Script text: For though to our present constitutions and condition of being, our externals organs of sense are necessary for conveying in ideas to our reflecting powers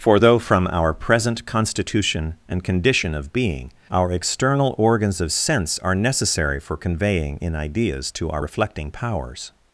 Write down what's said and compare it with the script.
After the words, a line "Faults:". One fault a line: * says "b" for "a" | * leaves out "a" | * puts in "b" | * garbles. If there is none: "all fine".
For though from our present constitution and condition of being, our external organs of sense are necessary for conveying in ideas to our reflecting powers
Faults:
* says "from" for "to"
* says "constitution" for "constitutions"
* says "external" for "externals"